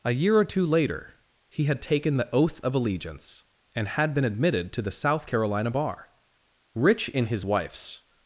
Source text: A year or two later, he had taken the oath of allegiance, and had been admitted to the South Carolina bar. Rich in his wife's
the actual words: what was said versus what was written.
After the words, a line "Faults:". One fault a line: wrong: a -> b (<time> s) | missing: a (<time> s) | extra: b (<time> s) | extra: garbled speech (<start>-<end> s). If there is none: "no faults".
A year or two later, he had taken the oath of allegiance, and had been admitted to the South Carolina bar. Rich in his wife's
Faults:
no faults